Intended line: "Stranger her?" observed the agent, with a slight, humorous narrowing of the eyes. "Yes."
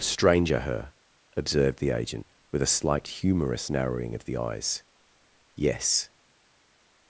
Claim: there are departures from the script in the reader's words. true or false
false